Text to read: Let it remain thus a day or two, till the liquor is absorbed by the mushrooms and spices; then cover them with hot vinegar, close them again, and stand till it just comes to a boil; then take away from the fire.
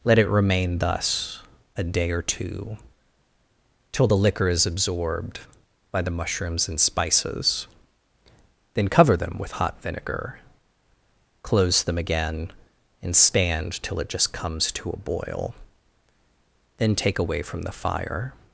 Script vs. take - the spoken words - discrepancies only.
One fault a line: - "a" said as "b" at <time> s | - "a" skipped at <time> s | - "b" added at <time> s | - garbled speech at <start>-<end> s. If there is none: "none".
none